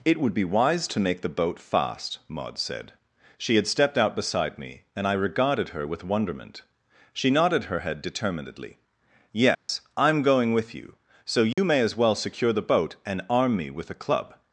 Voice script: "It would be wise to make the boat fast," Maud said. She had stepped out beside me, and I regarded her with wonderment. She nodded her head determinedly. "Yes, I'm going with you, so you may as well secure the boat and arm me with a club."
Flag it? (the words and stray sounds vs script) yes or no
yes